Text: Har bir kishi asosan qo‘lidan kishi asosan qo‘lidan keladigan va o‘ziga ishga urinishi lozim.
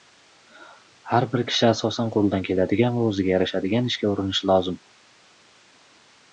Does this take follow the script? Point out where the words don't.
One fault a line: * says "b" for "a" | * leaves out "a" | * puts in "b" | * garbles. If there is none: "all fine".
* leaves out "kishi asosan qo‘lidan"
* puts in "yarashadigan"